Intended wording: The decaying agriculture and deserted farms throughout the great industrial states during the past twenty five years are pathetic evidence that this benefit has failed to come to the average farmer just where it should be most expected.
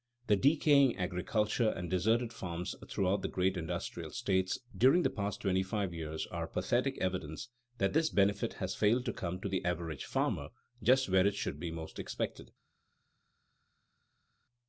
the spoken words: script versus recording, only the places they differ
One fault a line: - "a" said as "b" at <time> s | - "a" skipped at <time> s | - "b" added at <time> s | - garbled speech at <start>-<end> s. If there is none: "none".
none